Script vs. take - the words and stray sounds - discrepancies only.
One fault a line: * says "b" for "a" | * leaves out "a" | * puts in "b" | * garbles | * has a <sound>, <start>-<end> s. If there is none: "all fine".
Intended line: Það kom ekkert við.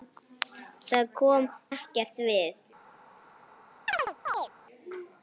* has a chirp, 3.9-4.5 s